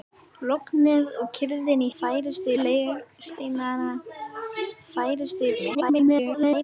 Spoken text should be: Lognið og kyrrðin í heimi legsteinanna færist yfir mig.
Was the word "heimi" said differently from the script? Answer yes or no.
yes